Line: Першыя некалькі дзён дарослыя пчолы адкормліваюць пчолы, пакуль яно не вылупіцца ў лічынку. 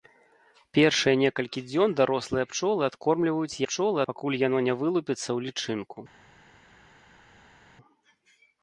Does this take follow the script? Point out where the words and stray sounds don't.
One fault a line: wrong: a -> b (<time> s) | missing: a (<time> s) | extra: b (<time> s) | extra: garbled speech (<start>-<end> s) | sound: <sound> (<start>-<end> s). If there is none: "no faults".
no faults